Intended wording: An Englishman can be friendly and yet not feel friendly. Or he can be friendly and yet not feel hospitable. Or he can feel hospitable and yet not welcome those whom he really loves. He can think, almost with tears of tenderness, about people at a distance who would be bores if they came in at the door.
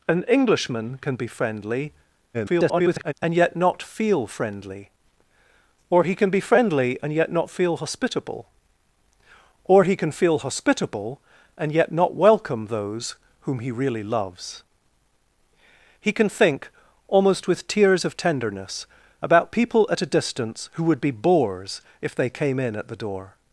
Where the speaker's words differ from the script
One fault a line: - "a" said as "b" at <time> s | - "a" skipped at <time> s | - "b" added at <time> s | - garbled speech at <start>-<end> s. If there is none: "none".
- garbled speech at 2.3-3.1 s